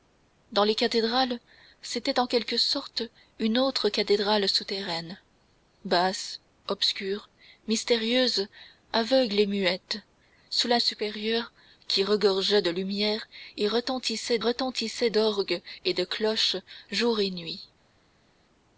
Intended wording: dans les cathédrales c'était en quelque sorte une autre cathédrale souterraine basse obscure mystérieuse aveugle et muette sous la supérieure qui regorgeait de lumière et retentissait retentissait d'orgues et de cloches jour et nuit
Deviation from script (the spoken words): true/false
false